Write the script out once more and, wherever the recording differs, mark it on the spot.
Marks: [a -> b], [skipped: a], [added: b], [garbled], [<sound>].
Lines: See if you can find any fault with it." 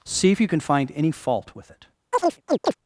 See if you can find any fault with it." [chirp]